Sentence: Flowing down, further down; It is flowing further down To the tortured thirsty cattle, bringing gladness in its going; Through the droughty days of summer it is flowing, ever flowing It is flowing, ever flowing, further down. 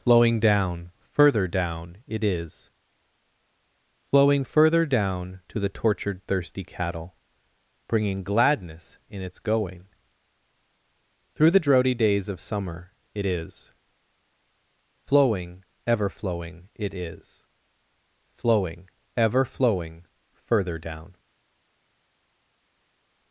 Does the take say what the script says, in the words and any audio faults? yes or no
yes